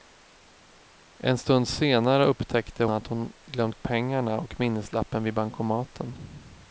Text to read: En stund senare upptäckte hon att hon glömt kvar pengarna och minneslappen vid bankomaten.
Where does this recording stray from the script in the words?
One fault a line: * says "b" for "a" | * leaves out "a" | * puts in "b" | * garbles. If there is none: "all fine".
* leaves out "hon"
* leaves out "kvar"